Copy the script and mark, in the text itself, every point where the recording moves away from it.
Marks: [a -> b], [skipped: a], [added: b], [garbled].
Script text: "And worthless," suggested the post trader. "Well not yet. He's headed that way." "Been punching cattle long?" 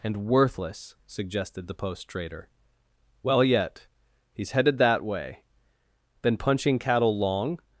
"And worthless," suggested the post trader. "Well [skipped: not] yet. He's headed that way." "Been punching cattle long?"